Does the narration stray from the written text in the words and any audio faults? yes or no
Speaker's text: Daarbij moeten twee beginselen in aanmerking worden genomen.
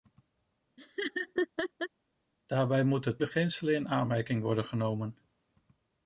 yes